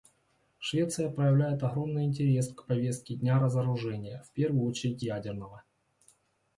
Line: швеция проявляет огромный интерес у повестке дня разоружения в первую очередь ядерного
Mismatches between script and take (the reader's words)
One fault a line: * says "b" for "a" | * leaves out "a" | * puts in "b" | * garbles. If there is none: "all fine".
* says "к" for "у"